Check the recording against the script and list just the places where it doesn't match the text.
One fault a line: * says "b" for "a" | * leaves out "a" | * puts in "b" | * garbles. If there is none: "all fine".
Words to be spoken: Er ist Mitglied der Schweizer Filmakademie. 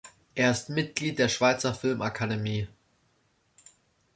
all fine